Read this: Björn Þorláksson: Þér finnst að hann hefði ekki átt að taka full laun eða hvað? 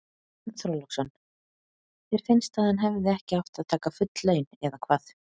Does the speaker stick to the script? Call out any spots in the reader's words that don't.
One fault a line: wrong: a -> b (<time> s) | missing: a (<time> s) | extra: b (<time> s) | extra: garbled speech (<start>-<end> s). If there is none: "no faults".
no faults